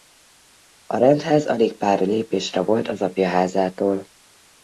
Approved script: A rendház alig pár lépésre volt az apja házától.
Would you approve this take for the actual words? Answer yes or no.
yes